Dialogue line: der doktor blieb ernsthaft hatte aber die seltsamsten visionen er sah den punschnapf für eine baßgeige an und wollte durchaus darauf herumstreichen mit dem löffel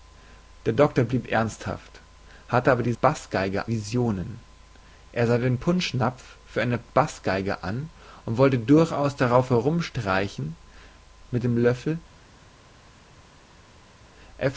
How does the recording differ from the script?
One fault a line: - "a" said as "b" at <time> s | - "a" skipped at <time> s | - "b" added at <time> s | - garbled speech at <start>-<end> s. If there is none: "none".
- "seltsamsten" said as "baßgeige" at 3.0 s